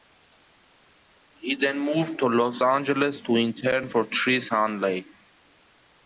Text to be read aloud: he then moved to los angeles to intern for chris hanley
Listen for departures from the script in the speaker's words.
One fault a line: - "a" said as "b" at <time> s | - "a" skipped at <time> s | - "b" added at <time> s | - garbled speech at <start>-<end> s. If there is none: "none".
none